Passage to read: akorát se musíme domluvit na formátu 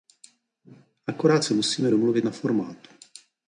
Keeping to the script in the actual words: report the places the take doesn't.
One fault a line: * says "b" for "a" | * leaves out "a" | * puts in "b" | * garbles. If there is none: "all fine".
all fine